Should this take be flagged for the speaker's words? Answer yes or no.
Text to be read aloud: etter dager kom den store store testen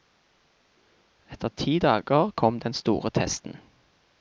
yes